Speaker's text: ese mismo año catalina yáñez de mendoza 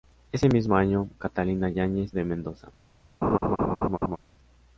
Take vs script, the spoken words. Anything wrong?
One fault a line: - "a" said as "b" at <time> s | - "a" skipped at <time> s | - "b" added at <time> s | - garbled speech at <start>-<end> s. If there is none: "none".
none